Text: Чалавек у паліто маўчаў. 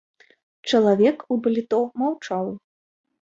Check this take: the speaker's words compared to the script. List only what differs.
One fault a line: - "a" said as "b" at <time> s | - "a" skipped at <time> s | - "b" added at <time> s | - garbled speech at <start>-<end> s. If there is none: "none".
none